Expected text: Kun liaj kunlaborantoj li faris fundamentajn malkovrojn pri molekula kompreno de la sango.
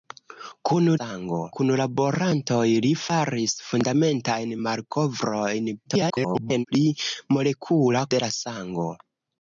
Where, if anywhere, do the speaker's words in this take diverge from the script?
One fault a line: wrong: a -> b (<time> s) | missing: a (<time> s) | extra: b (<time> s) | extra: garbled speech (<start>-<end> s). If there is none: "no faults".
wrong: liaj -> sango (1.0 s)
extra: garbled speech (5.8-6.7 s)
missing: kompreno (8.1 s)